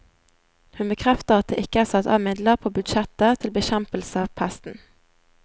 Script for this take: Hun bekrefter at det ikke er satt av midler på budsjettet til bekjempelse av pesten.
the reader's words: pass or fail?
pass